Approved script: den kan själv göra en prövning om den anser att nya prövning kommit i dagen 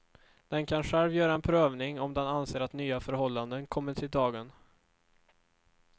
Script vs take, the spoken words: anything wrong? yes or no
yes